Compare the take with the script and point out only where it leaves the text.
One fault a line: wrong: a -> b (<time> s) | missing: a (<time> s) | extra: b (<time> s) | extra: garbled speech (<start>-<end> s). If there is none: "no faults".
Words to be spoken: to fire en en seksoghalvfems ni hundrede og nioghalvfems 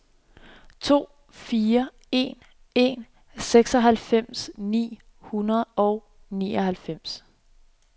no faults